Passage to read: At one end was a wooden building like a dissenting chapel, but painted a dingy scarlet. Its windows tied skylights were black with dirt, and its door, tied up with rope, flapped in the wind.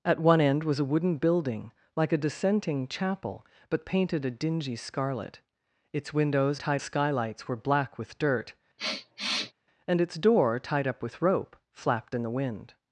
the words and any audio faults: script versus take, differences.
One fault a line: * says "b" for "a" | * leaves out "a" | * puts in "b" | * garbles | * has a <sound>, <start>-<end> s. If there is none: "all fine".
* has a sniff, 8.8-9.5 s